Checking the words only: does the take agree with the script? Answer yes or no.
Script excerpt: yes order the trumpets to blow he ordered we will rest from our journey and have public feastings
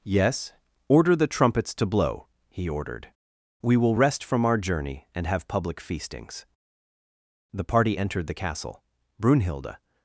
no